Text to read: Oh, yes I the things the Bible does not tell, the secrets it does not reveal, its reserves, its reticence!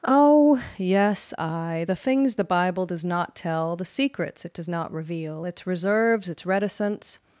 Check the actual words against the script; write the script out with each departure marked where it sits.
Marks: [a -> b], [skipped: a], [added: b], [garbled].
Oh, yes I the things the Bible does not tell, the secrets it does not reveal, its reserves, its reticence!